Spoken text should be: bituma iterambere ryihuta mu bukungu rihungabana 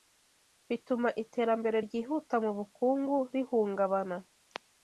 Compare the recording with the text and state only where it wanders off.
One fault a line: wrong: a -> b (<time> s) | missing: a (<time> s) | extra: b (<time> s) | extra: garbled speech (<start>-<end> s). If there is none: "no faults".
no faults